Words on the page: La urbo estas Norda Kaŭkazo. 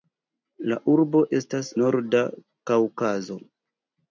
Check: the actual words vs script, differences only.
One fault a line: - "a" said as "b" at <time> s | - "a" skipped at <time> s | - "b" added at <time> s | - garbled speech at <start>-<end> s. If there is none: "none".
none